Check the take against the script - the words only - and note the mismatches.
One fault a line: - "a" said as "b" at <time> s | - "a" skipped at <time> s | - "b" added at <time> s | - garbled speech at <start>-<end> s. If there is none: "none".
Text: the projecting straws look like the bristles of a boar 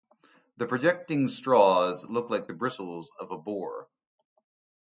none